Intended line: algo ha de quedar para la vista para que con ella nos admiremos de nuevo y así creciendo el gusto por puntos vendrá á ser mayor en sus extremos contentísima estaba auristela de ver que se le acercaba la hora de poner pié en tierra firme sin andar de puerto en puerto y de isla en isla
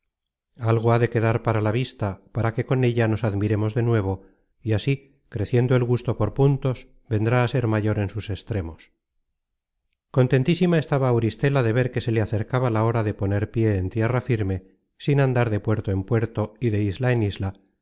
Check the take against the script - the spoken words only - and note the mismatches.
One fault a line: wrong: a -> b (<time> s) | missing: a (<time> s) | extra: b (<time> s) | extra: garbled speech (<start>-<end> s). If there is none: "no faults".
no faults